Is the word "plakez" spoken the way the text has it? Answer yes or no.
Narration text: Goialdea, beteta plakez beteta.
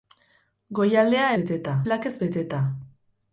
yes